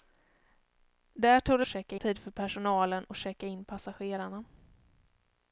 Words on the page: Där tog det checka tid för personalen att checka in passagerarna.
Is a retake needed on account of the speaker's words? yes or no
no